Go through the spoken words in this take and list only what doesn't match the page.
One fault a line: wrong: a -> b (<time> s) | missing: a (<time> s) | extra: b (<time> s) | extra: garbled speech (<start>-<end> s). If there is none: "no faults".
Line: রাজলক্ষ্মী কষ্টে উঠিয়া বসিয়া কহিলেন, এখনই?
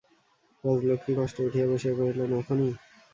no faults